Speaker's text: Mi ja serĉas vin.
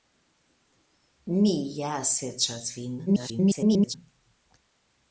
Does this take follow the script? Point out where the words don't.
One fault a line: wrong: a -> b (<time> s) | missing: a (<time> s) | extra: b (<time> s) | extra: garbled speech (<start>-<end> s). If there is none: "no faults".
extra: garbled speech (3.1-3.9 s)